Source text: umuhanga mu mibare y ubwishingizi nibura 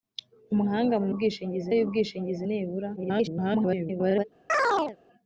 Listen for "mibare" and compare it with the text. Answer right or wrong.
wrong